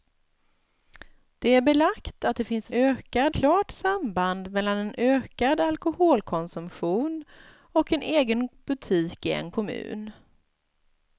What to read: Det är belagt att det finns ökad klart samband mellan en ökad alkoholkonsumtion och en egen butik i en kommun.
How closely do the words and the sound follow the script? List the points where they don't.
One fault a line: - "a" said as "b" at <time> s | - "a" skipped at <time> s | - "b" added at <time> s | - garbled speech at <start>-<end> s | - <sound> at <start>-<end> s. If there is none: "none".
none